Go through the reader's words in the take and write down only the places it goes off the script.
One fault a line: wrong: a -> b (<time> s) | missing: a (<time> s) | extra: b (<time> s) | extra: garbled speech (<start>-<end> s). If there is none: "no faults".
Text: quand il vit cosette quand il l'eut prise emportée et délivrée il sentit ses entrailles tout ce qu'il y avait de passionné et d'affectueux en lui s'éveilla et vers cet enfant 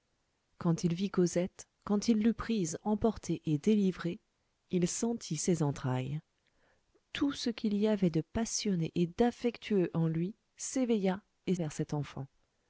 no faults